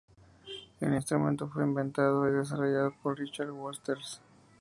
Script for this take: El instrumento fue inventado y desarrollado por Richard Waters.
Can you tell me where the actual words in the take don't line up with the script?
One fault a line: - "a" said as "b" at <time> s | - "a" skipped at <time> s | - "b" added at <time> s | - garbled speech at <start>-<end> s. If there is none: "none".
none